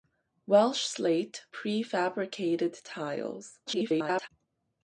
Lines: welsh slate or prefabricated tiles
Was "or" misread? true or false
true